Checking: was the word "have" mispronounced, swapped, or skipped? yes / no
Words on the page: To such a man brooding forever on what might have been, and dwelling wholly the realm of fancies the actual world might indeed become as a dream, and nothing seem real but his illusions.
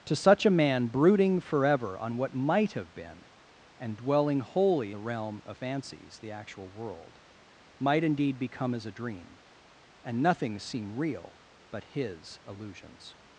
no